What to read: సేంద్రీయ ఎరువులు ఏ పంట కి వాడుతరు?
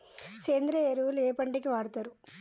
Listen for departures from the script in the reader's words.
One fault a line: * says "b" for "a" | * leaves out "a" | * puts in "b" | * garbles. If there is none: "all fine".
all fine